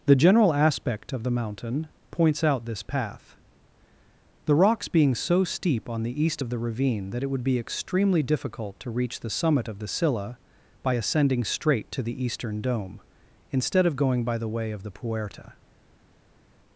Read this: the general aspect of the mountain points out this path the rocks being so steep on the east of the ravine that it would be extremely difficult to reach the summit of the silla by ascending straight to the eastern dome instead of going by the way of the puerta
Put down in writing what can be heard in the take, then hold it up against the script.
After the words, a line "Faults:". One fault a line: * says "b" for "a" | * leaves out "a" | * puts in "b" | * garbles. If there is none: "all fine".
the general aspect of the mountain points out this path the rocks being so steep on the east of the ravine that it would be extremely difficult to reach the summit of the silla by ascending straight to the eastern dome instead of going by the way of the puerta
Faults:
all fine